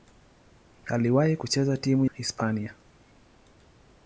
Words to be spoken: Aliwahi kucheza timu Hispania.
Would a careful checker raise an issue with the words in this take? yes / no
no